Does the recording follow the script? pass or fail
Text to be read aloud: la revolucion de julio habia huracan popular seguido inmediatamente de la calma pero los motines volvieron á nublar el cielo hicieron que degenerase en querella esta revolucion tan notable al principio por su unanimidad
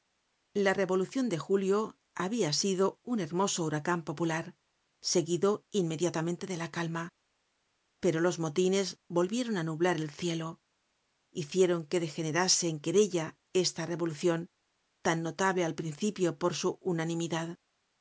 fail